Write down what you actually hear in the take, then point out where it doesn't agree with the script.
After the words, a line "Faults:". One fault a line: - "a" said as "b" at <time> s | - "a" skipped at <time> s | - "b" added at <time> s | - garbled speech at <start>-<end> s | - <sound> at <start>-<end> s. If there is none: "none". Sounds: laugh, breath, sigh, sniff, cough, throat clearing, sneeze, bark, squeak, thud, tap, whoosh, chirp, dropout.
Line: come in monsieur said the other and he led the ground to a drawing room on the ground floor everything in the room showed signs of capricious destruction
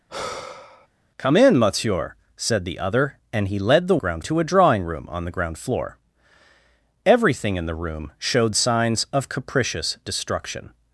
come in monsieur said the other and he led the ground to a drawing room on the ground floor everything in the room showed signs of capricious destruction
Faults:
- sigh at 0.1-0.9 s